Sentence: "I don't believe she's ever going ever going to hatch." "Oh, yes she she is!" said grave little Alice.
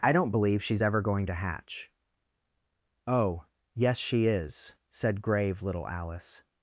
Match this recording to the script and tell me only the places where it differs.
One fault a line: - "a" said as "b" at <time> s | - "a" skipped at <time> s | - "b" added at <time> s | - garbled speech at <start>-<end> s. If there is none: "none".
- "ever going" skipped at 1.2 s
- "she" skipped at 4.3 s